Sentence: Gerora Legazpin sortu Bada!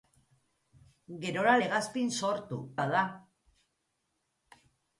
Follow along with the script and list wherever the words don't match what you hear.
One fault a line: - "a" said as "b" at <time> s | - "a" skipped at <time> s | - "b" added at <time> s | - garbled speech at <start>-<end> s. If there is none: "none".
none